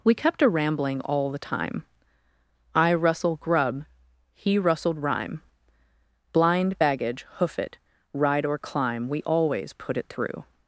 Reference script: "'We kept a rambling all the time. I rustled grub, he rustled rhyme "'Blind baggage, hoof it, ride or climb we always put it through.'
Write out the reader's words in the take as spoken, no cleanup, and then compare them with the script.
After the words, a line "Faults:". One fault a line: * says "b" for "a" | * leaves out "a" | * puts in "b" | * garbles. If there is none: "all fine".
"'We kept a rambling all the time. I rustle grub, he rustled rhyme "'Blind baggage, hoof it, ride or climb we always put it through.'
Faults:
* says "rustle" for "rustled"